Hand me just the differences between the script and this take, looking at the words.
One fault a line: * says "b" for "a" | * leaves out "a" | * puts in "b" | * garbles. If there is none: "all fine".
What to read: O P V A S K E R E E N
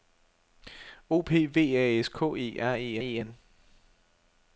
all fine